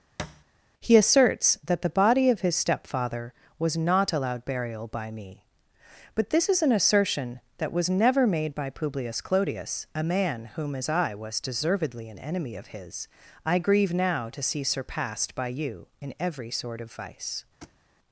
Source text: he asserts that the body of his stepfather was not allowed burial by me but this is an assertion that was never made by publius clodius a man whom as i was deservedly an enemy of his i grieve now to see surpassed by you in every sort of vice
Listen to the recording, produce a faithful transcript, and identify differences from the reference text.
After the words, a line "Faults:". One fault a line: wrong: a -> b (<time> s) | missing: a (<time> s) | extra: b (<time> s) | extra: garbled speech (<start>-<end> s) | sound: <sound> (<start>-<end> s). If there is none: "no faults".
he asserts that the body of his stepfather was not allowed burial by me but this is an assertion that was never made by publius clodius a man whom as i was deservedly an enemy of his i grieve now to see surpassed by you in every sort of vice
Faults:
sound: thud (0.2-0.4 s)
sound: thud (17.6-17.8 s)